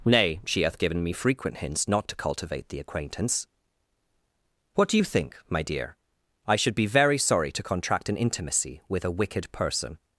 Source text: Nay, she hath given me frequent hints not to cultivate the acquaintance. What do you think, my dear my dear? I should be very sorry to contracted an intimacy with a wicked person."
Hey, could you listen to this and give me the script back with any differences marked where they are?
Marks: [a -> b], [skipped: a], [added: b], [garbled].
Nay, she hath given me frequent hints not to cultivate the acquaintance. What do you think, my dear [skipped: my dear?] I should be very sorry to [contracted -> contract] an intimacy with a wicked person."